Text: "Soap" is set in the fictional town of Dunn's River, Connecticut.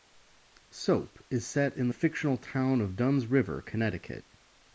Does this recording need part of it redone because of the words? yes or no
no